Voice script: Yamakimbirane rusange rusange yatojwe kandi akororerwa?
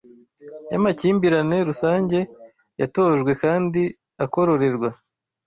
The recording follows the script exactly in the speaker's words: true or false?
false